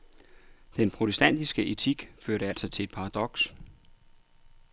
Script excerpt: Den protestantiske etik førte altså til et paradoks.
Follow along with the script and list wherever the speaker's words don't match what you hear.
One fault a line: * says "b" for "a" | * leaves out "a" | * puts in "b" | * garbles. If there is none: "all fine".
all fine